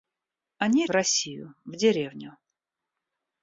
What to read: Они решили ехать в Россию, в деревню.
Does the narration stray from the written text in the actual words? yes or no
yes